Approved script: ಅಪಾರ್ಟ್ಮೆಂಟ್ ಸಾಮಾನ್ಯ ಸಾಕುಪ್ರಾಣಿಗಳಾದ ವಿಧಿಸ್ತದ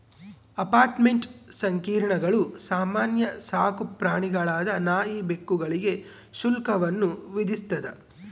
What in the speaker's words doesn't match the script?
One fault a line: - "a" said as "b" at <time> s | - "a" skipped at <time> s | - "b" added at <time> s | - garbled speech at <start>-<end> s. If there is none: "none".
- "ಸಂಕೀರ್ಣಗಳು" added at 1.6 s
- "ನಾಯಿ ಬೆಕ್ಕುಗಳಿಗೆ ಶುಲ್ಕವನ್ನು" added at 4.9 s